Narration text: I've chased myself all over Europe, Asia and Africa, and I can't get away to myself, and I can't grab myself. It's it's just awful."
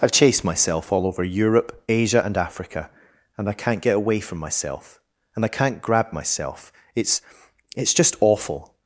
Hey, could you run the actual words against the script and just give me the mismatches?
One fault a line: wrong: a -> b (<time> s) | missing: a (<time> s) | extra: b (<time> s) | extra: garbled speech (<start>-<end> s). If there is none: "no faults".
wrong: to -> from (4.2 s)